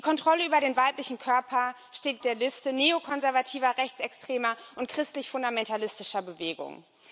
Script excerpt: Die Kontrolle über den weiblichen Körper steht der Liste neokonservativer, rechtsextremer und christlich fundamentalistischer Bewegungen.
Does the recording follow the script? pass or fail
pass